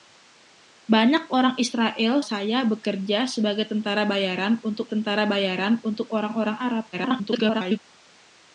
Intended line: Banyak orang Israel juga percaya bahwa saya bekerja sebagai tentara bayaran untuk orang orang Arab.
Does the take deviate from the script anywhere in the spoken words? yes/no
yes